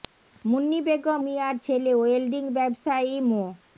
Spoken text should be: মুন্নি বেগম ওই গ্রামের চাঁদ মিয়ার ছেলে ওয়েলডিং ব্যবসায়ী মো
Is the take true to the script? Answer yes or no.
no